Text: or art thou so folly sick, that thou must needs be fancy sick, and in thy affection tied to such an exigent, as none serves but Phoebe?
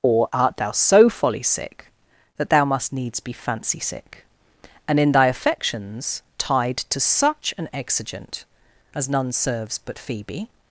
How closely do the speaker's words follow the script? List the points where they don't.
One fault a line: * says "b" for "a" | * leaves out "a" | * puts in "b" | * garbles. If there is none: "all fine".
* says "affections" for "affection"